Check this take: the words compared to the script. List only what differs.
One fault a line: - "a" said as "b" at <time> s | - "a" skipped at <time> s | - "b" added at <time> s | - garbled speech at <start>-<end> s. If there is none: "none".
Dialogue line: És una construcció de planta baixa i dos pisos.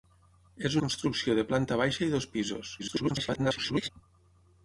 - "una" skipped at 0.8 s
- garbled speech at 2.8-3.9 s